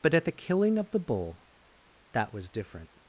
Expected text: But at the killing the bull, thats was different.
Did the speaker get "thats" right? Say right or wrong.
wrong